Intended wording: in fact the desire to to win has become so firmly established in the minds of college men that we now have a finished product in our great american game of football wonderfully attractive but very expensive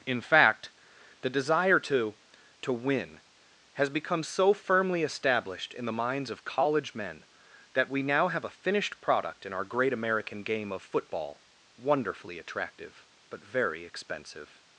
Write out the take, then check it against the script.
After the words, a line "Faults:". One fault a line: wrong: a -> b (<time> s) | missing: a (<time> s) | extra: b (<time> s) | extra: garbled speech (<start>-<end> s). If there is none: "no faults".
in fact the desire to to win has become so firmly established in the minds of college men that we now have a finished product in our great american game of football wonderfully attractive but very expensive
Faults:
no faults